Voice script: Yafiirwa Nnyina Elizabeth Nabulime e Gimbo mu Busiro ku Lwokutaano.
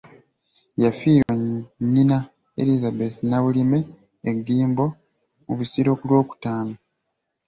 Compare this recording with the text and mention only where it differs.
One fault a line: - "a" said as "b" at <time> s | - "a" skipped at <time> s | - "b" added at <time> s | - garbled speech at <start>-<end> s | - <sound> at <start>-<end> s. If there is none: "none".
- dropout at 1.2-1.3 s